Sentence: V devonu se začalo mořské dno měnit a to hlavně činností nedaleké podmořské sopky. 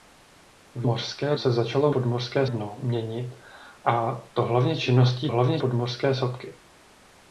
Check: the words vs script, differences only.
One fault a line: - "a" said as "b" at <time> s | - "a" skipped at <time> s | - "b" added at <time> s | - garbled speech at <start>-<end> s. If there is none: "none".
- "devonu" said as "mořské" at 0.9 s
- "mořské" said as "podmořské" at 1.9 s
- "nedaleké" said as "hlavně" at 5.3 s